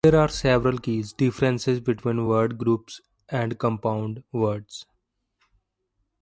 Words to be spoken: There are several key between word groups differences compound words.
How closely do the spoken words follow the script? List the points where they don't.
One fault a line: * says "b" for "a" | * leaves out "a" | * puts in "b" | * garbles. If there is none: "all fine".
* puts in "differences"
* says "and" for "differences"